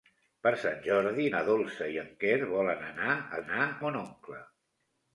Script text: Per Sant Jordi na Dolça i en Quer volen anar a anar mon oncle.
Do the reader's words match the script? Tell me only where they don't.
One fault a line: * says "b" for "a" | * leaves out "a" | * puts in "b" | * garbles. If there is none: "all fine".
all fine